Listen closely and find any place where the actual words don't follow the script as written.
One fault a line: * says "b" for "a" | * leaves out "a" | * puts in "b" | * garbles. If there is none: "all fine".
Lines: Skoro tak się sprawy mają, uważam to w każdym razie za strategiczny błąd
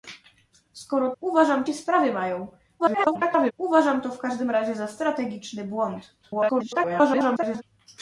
* says "uważam" for "tak"
* garbles
* garbles